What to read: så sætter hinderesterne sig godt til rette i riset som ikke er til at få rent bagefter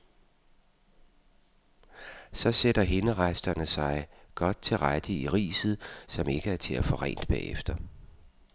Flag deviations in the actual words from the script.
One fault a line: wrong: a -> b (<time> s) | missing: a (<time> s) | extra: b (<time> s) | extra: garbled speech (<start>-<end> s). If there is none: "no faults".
no faults